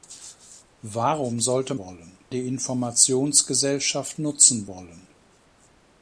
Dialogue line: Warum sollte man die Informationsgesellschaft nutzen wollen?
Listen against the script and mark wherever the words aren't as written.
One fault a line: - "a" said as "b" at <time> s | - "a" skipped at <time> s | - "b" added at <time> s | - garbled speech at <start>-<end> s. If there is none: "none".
- "man" said as "wollen" at 1.8 s